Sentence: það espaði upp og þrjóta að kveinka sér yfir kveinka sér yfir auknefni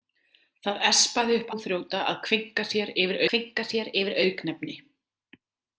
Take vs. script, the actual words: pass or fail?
pass